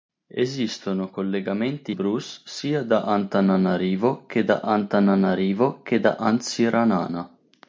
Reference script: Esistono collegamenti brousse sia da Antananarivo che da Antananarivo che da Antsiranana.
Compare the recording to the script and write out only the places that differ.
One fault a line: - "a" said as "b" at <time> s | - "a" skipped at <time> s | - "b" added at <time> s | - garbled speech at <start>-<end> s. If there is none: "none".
none